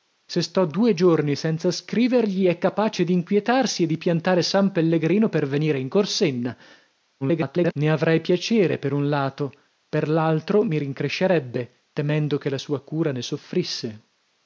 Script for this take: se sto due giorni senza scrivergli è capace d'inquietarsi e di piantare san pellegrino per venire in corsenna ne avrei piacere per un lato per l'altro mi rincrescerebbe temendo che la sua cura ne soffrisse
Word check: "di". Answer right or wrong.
right